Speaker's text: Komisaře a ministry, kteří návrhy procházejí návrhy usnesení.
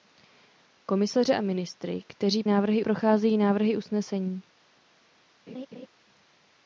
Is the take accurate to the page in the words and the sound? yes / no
no